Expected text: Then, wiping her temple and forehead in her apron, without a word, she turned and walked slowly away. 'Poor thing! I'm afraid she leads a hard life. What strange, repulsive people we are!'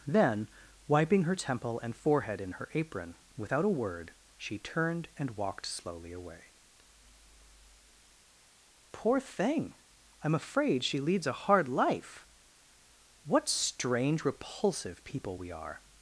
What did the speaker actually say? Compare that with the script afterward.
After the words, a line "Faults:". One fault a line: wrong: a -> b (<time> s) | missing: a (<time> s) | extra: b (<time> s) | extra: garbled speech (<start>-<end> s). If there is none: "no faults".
Then, wiping her temple and forehead in her apron, without a word, she turned and walked slowly away. 'Poor thing! I'm afraid she leads a hard life. What strange, repulsive people we are!'
Faults:
no faults